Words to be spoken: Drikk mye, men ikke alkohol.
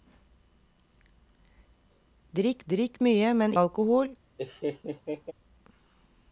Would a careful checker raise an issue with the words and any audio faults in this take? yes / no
yes